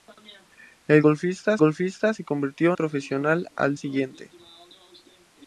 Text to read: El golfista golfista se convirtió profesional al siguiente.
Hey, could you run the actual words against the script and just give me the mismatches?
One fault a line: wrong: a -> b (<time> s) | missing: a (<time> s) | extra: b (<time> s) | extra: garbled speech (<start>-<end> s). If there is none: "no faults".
no faults